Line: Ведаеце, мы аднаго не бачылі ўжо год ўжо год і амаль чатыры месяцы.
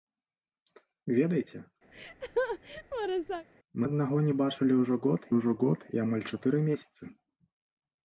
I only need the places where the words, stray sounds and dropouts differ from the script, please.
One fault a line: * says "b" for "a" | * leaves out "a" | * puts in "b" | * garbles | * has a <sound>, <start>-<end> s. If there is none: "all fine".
* has a laugh, 1.9-3.5 s